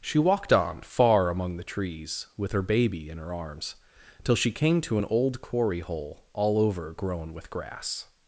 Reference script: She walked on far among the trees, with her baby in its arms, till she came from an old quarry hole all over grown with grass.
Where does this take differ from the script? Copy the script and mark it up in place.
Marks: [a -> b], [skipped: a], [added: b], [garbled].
She walked on far among the trees, with her baby in [its -> her] arms, till she came [from -> to] an old quarry hole all over grown with grass.